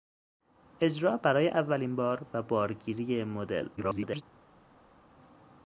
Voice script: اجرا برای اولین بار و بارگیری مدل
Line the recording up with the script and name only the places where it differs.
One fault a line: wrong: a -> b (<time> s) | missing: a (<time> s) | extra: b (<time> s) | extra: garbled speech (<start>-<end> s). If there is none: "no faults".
extra: garbled speech (3.8-4.2 s)